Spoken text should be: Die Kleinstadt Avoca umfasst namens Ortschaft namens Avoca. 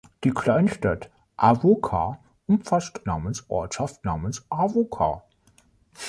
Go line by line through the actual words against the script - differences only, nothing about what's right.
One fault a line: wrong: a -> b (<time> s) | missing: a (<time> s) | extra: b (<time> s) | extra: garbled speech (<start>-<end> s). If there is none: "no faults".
no faults